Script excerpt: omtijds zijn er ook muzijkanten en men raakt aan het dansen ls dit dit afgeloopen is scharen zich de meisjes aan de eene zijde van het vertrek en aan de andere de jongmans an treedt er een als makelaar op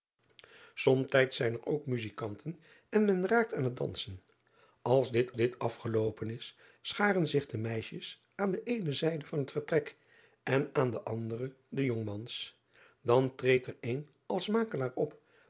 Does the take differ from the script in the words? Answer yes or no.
no